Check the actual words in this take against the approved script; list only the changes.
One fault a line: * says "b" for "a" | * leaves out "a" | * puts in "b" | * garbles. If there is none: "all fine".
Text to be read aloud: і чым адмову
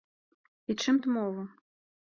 all fine